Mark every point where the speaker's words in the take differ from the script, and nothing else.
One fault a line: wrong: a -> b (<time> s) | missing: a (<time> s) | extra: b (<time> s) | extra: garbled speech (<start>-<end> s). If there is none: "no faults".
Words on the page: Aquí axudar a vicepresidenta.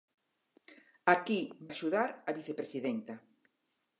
no faults